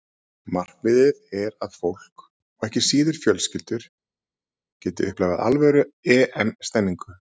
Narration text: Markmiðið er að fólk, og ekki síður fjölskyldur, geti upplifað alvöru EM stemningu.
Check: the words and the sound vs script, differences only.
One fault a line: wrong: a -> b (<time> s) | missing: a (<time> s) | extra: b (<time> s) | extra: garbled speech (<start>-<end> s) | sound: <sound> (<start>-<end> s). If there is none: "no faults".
no faults